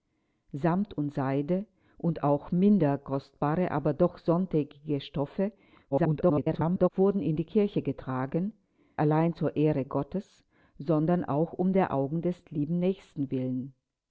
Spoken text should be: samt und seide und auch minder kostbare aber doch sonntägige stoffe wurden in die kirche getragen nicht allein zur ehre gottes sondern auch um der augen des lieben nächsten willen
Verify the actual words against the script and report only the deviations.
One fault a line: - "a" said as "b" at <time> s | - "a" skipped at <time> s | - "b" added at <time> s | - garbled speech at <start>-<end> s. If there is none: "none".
- garbled speech at 5.9-6.9 s
- "nicht" skipped at 8.5 s